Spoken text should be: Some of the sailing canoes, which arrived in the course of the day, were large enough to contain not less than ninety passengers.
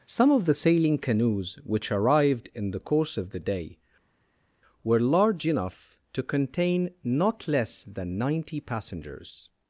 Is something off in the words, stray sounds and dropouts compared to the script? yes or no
no